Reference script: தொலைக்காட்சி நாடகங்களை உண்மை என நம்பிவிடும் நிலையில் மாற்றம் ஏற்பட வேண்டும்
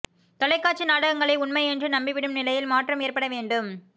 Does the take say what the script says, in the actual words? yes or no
no